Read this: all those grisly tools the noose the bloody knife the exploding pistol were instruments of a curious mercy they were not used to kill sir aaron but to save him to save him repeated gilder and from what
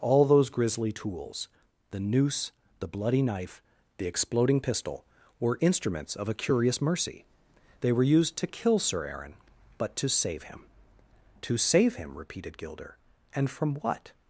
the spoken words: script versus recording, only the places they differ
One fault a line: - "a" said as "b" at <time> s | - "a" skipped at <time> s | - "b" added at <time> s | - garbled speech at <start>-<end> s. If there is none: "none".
- "not" skipped at 8.0 s